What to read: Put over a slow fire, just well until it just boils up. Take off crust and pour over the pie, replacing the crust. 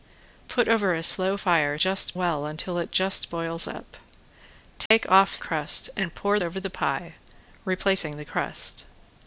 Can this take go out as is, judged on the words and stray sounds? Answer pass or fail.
fail